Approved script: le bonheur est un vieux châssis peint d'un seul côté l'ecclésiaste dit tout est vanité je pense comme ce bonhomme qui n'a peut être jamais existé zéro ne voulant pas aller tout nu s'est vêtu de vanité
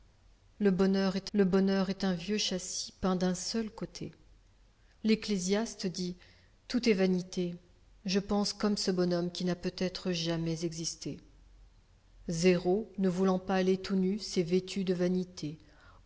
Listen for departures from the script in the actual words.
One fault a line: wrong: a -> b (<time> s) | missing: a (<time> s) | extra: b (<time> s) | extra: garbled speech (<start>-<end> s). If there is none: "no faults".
extra: le bonheur est (1.3 s)